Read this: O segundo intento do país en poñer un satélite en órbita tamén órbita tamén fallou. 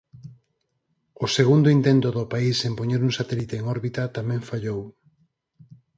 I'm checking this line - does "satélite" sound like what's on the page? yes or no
yes